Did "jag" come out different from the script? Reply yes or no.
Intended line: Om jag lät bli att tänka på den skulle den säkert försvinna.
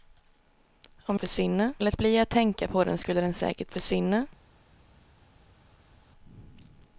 yes